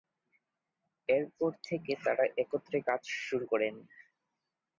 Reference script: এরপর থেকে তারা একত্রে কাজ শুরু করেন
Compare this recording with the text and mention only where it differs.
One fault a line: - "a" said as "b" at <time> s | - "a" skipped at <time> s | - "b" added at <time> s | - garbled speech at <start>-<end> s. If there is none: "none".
none